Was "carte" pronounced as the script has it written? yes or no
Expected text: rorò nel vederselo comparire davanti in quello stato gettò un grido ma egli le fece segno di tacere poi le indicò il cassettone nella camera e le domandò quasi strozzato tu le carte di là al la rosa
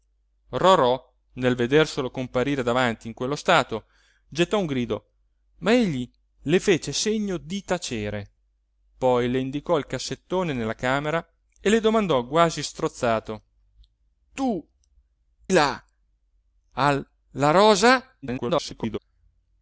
no